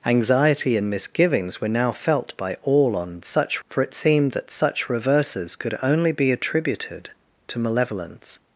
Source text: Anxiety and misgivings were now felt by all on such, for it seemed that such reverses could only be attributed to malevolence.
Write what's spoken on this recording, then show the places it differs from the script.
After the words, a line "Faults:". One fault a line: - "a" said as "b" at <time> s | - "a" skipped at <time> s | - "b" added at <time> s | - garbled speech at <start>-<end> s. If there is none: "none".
Anxiety and misgivings were now felt by all on such, for it seemed that such reverses could only be attributed to malevolence.
Faults:
none